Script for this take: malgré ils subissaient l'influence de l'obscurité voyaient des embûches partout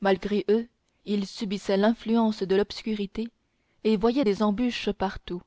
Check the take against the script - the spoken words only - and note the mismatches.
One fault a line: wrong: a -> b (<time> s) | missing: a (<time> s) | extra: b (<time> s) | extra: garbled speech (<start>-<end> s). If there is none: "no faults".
extra: eux (0.5 s)
extra: et (3.8 s)